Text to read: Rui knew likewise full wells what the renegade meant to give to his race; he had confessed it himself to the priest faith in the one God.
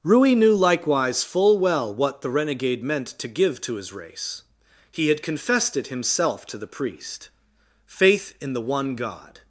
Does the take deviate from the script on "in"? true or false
false